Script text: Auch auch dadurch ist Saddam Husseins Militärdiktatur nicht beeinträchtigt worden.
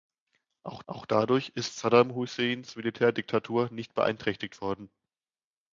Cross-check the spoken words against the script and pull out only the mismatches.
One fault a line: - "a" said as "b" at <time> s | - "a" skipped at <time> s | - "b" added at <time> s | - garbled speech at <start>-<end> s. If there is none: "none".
none